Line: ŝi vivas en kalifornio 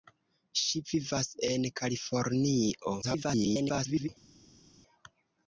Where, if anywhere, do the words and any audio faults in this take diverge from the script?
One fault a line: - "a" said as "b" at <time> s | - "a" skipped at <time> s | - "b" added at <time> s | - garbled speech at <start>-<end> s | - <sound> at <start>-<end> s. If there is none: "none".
- garbled speech at 3.0-4.1 s